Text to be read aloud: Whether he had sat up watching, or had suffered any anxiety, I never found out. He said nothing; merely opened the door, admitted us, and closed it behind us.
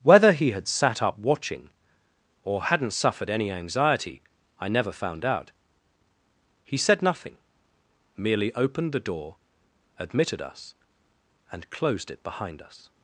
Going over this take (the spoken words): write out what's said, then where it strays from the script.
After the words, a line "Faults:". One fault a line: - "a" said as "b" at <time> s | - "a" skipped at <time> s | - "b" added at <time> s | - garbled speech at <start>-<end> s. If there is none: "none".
Whether he had sat up watching, or hadn't suffered any anxiety, I never found out. He said nothing; merely opened the door, admitted us, and closed it behind us.
Faults:
- "had" said as "hadn't" at 2.6 s